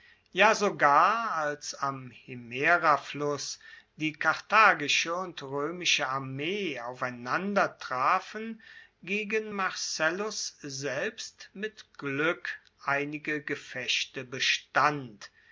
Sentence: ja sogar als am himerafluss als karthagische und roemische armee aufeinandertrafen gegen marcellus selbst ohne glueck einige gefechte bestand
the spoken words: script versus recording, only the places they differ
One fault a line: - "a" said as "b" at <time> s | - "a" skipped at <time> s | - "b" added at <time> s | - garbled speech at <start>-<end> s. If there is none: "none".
- "als" said as "die" at 4.0 s
- "ohne" said as "mit" at 11.5 s